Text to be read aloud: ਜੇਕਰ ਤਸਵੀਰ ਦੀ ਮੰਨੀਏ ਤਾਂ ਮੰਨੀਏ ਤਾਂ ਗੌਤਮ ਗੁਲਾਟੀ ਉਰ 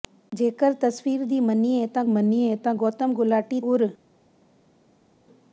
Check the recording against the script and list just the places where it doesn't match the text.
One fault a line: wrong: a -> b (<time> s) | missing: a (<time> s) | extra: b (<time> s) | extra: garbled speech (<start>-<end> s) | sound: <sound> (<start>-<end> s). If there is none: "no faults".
no faults